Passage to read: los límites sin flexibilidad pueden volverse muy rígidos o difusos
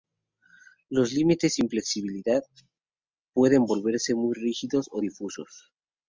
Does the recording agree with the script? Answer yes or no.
yes